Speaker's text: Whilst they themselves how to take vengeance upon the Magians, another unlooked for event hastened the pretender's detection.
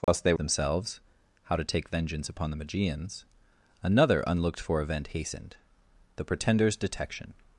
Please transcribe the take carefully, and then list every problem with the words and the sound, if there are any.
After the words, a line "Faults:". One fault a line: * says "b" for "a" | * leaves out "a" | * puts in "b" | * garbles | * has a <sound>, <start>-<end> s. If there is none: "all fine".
Whilst they themselves how to take vengeance upon the Magians, another unlooked for event hastened the pretender's detection.
Faults:
* has a dropout, 0.0-0.1 s